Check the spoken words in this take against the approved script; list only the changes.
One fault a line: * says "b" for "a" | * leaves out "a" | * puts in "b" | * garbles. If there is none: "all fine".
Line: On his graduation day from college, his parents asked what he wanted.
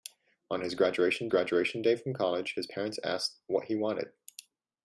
* puts in "graduation"